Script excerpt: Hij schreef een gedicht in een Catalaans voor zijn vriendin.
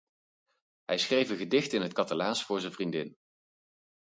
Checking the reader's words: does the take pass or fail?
fail